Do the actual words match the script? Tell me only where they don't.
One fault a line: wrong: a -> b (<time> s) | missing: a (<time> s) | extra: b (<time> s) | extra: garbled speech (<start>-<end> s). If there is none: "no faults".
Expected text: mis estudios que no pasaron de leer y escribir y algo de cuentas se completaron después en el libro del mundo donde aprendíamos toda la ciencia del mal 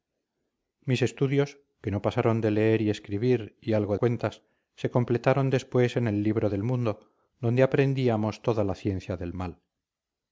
missing: de (4.0 s)